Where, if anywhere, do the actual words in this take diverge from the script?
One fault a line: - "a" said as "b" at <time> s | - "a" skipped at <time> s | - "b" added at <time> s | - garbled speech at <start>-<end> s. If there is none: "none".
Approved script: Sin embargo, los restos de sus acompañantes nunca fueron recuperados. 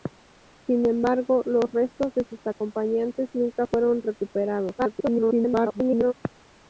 - garbled speech at 4.8-6.1 s